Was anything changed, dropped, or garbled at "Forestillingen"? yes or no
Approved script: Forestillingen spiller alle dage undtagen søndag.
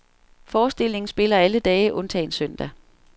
no